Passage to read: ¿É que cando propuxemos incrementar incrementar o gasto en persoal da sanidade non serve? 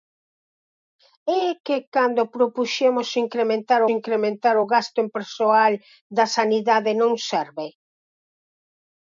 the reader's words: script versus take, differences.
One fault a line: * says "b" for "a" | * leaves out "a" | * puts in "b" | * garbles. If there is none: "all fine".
all fine